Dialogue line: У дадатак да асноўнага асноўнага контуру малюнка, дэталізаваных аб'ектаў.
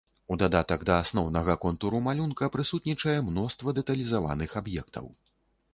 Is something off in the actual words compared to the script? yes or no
yes